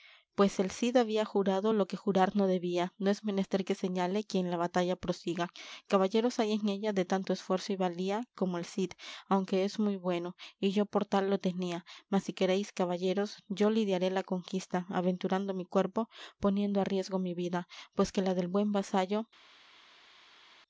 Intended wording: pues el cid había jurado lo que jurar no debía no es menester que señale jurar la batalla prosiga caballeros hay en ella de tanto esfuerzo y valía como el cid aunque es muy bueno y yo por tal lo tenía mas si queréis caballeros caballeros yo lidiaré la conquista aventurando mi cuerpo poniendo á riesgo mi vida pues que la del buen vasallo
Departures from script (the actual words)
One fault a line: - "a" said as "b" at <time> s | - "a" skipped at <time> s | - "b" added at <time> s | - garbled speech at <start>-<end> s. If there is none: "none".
- "jurar" said as "quien" at 4.2 s
- "caballeros" skipped at 13.4 s